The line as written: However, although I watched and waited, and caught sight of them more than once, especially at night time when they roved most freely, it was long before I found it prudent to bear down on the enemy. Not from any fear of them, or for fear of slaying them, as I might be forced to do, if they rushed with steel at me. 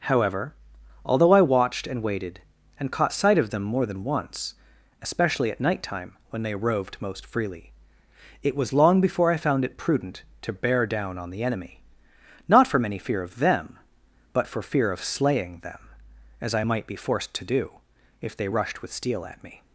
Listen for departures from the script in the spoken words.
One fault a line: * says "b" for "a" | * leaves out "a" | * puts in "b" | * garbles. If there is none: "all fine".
* says "but" for "or"